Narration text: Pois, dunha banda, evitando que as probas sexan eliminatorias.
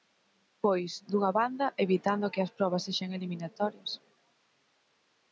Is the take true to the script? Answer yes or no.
yes